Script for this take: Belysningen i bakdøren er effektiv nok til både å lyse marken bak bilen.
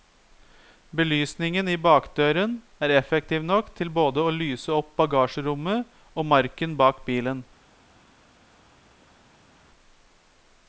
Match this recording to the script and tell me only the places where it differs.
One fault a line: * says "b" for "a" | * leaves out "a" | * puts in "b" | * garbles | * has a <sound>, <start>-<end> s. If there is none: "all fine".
* puts in "opp bagasjerommet og"